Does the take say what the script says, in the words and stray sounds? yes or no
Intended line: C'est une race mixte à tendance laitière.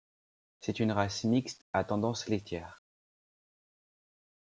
yes